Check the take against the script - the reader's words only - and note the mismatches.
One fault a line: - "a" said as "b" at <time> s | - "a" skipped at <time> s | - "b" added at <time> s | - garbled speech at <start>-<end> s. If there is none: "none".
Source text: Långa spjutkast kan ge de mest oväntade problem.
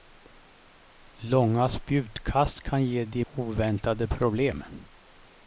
- "mest" skipped at 3.2 s